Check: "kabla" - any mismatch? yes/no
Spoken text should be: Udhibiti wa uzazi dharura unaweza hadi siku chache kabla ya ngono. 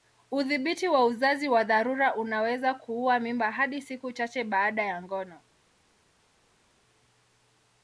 yes